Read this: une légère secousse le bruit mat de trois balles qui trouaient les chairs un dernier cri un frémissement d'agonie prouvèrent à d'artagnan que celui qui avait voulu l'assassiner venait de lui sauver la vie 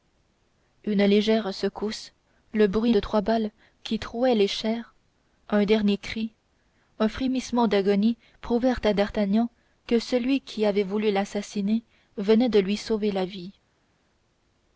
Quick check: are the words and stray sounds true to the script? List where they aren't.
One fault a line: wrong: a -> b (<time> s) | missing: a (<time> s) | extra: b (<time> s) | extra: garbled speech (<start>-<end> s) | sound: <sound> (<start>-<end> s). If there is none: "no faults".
missing: mat (3.0 s)